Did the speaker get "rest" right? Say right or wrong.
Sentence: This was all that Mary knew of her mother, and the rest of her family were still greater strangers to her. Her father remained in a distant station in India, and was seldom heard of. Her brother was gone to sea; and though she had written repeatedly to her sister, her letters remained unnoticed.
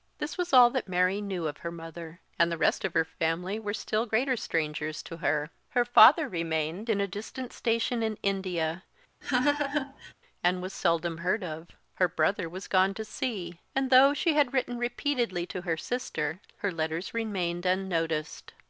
right